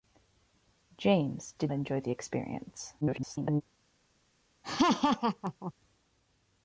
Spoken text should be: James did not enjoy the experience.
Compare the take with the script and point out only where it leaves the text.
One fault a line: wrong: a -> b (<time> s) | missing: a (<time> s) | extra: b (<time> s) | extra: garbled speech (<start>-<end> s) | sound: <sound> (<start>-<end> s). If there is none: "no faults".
missing: not (1.7 s)
extra: garbled speech (3.0-3.6 s)
sound: laugh (4.6-5.7 s)